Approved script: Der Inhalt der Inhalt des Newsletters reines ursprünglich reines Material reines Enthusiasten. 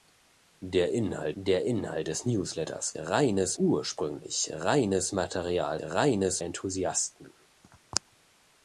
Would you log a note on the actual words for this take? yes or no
no